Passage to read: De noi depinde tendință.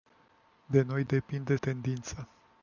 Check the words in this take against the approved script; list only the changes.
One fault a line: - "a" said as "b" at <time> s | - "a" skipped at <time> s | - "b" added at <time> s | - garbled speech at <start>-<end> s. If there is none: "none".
none